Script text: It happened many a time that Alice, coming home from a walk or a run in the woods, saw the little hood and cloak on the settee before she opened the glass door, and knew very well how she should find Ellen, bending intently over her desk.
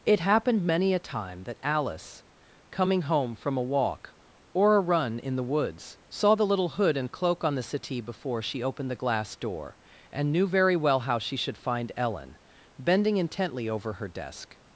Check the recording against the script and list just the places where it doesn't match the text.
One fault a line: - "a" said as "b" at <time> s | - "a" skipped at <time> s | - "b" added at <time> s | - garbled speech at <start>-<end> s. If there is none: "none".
none